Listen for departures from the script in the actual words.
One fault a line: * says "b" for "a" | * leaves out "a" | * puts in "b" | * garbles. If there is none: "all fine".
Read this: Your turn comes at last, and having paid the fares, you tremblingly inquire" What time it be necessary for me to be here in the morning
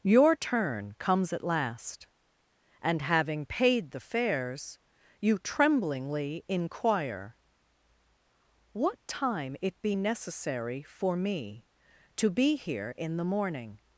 all fine